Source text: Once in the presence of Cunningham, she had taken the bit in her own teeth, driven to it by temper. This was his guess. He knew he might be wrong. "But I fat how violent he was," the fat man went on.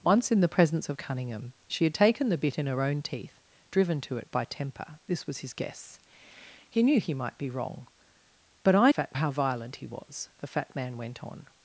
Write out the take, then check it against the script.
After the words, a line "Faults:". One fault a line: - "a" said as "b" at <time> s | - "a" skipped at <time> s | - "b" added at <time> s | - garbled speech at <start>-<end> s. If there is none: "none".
Once in the presence of Cunningham, she had taken the bit in her own teeth, driven to it by temper. This was his guess. He knew he might be wrong. "But I fat how violent he was," the fat man went on.
Faults:
none